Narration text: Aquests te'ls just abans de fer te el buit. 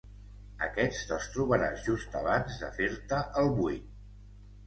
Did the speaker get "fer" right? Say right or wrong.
right